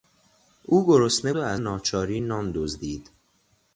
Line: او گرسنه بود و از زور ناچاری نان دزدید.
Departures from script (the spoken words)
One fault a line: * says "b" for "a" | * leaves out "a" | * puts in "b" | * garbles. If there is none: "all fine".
* leaves out "بود"
* leaves out "زور"